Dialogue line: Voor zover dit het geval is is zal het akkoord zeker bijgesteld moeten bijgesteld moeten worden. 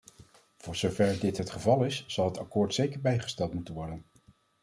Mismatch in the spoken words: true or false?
true